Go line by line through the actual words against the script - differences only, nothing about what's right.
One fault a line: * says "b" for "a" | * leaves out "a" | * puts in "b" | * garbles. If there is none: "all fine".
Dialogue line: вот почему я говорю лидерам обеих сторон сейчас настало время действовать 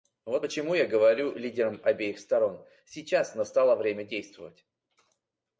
all fine